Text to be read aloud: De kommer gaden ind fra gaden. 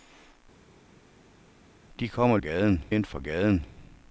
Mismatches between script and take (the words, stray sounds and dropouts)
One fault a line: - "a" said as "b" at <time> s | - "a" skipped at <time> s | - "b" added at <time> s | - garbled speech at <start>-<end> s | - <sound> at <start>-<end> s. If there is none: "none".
none